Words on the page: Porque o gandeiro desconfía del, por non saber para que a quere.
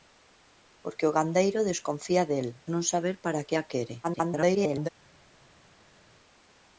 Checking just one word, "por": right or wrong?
wrong